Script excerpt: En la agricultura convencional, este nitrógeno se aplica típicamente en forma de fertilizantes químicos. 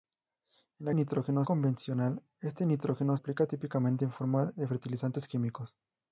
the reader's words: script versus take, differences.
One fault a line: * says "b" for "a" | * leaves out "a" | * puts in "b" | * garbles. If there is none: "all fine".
* says "nitrógeno" for "agricultura"
* leaves out "se"